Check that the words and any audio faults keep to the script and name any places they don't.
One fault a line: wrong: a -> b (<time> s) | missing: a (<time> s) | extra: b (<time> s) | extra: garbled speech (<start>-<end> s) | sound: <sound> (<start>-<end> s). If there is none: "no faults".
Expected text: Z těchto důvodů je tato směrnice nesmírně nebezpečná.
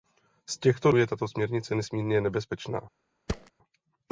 missing: důvodů (0.9 s)
sound: thud (3.3-3.5 s)